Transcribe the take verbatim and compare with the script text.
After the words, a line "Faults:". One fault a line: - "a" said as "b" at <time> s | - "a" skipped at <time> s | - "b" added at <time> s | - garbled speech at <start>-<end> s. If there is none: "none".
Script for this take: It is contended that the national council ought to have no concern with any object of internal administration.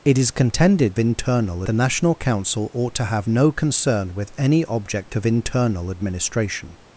It is contended internal the national council ought to have no concern with any object of internal administration.
Faults:
- "that" said as "internal" at 1.0 s